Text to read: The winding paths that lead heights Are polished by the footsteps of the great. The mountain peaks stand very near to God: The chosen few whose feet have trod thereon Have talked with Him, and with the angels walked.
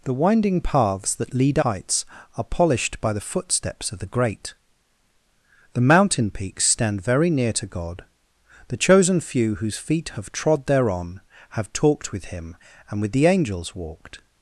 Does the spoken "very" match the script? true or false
true